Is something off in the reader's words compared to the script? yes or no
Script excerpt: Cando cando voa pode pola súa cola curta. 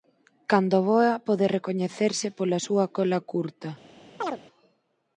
yes